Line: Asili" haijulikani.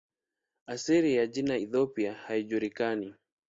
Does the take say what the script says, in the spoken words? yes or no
no